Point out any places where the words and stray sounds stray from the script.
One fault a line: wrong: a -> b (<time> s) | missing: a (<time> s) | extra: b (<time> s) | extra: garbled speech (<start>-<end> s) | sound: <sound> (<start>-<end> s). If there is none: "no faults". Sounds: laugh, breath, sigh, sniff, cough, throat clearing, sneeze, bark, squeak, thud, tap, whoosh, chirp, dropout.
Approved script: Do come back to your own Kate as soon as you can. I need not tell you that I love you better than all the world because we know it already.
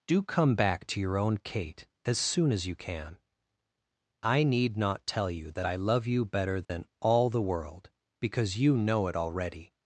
sound: dropout (6.6-6.7 s)
wrong: we -> you (8.6 s)